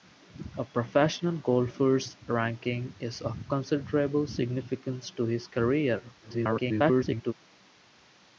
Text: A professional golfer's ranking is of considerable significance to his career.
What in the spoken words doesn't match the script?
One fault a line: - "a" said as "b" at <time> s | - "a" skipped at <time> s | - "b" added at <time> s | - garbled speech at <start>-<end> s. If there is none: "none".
- garbled speech at 6.2-7.3 s